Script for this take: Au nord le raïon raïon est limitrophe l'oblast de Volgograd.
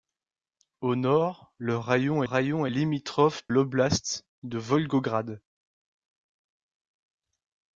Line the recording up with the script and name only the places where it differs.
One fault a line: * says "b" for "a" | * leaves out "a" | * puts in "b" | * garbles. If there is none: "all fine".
all fine